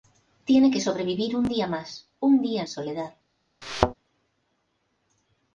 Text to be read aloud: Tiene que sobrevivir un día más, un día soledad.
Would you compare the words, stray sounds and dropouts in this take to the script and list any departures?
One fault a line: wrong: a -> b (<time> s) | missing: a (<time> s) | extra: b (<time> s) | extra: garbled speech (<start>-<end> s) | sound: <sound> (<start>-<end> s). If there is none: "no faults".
sound: thud (3.6-3.9 s)